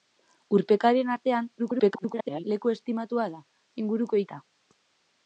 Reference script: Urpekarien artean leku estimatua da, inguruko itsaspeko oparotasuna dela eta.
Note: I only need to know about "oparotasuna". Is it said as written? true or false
false